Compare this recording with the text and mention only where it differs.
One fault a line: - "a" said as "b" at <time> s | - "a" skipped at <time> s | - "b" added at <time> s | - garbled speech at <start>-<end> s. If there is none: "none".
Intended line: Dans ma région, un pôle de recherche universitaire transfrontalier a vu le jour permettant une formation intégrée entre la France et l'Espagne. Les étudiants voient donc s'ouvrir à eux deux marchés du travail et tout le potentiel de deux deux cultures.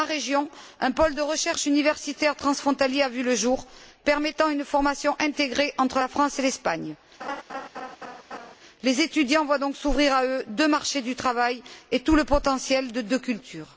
- "deux" skipped at 13.2 s